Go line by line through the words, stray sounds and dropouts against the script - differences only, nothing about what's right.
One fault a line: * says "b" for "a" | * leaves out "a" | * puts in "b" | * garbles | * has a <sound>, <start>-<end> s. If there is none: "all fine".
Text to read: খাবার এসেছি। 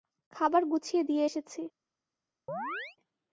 * puts in "গুছিয়ে দিয়ে"
* has a chirp, 2.5-3.0 s